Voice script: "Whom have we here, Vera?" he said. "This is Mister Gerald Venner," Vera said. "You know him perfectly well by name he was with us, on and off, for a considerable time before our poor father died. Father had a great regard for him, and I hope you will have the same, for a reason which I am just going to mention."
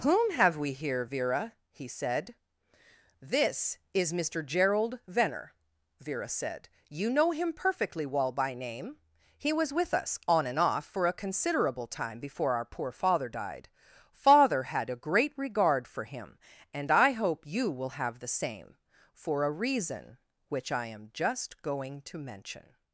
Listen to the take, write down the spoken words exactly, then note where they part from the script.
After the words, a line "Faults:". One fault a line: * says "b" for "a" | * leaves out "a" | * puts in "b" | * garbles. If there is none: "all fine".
"Whom have we here, Vera?" he said. "This is Mister Gerald Venner," Vera said. "You know him perfectly well by name he was with us, on and off, for a considerable time before our poor father died. Father had a great regard for him, and I hope you will have the same, for a reason which I am just going to mention."
Faults:
all fine